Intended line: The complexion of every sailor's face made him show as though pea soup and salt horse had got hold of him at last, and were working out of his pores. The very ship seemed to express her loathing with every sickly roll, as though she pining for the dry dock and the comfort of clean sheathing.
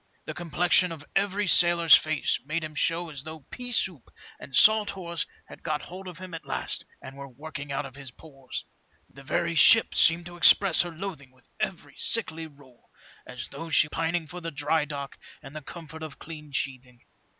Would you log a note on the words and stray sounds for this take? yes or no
no